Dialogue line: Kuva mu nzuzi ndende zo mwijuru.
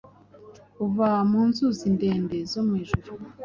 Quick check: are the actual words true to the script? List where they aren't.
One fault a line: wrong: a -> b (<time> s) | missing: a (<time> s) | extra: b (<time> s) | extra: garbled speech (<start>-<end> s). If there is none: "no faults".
no faults